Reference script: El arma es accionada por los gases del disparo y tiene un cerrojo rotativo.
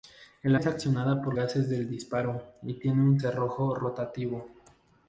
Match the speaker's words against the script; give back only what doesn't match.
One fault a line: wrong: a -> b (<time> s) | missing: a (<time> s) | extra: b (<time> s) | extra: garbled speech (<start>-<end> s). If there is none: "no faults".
missing: arma (0.6 s)
missing: los (1.3 s)